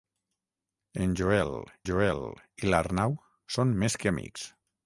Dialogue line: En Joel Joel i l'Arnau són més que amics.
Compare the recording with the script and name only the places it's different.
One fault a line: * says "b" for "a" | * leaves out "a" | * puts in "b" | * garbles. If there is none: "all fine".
all fine